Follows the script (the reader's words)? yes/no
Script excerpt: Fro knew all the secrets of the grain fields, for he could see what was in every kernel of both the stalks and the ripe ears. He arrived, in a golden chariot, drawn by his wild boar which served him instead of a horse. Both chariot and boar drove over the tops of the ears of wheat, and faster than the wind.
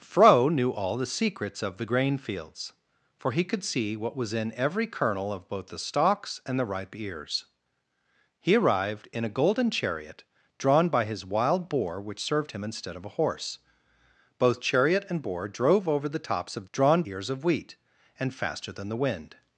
no